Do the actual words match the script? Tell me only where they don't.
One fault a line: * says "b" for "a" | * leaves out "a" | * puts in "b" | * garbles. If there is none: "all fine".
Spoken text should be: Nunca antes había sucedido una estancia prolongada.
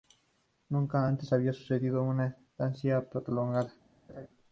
all fine